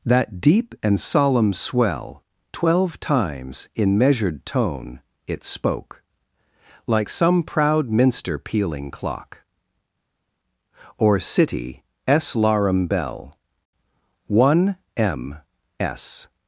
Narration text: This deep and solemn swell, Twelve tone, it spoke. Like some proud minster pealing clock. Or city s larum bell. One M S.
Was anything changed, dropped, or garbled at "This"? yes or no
yes